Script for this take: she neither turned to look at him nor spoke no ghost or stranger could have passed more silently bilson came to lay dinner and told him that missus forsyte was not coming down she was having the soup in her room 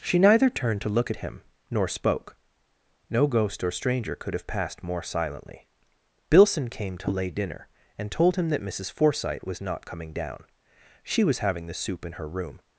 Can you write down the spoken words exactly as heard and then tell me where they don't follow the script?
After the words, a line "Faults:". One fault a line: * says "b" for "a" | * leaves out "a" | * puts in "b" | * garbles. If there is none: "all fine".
she neither turned to look at him nor spoke no ghost or stranger could have passed more silently bilson came to lay dinner and told him that missus forsyte was not coming down she was having the soup in her room
Faults:
all fine